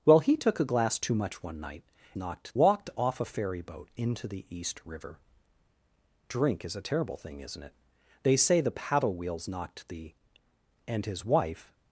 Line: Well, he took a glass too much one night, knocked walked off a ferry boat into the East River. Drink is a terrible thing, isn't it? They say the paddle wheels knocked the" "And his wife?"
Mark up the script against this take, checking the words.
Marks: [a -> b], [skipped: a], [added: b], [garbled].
Well, he took a glass too much one night, knocked walked off a ferry boat into the East River. Drink is a terrible thing, isn't it? They say the paddle wheels knocked the" "And his wife?"